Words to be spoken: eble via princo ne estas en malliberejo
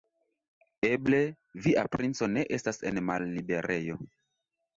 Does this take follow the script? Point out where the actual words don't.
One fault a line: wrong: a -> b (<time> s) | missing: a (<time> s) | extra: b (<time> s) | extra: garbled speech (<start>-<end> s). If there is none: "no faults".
no faults